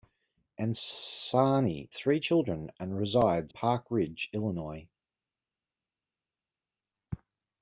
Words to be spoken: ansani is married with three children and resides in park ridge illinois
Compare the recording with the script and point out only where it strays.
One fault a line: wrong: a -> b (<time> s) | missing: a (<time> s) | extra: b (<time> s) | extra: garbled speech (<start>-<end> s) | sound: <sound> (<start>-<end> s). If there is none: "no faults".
missing: is married with (1.9 s)
missing: in (3.5 s)